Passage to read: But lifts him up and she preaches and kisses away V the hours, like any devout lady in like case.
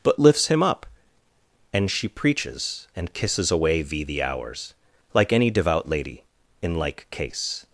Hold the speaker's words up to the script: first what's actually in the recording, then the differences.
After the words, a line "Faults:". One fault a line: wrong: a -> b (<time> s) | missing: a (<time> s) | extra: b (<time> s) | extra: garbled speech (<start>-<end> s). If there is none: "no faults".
But lifts him up and she preaches and kisses away V the hours, like any devout lady in like case.
Faults:
no faults